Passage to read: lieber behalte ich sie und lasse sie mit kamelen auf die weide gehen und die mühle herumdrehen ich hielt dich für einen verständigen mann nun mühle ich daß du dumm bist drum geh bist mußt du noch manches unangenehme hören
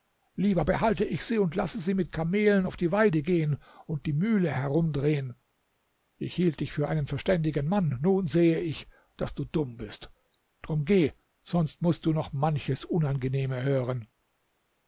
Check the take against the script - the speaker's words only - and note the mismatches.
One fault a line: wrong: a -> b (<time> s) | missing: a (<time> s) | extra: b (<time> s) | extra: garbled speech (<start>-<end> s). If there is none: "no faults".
wrong: mühle -> sehe (8.3 s)
wrong: bist -> sonst (11.4 s)